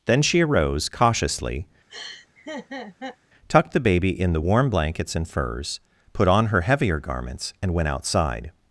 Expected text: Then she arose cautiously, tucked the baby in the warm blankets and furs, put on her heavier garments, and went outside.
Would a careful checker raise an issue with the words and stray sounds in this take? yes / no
yes